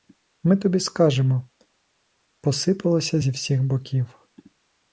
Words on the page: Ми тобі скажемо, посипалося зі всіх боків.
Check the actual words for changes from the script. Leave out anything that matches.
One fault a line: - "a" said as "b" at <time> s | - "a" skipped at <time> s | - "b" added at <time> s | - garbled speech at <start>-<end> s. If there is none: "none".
none